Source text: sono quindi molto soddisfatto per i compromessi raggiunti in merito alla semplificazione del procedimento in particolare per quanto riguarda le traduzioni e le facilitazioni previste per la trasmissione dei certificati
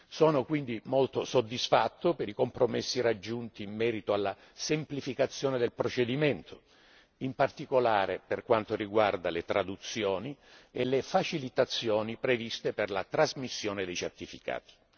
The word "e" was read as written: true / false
true